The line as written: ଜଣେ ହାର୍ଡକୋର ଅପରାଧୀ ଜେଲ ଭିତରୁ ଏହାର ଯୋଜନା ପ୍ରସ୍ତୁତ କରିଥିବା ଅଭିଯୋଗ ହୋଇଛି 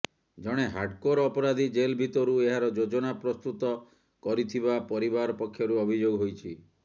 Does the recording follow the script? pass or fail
fail